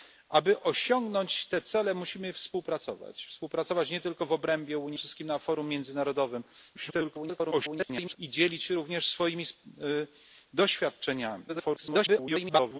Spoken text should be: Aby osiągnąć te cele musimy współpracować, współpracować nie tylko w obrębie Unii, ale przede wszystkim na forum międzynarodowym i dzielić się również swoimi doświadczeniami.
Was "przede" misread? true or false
true